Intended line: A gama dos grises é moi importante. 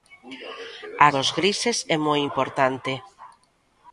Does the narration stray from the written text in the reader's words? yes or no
yes